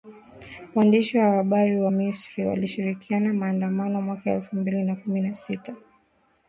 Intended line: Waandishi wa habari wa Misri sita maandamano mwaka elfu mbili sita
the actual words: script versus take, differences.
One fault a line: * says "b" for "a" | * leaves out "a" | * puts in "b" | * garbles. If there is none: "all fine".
* says "walishiriki" for "sita"
* puts in "na kumi na"